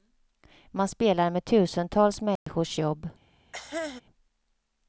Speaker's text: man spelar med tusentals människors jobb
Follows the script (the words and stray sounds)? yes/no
no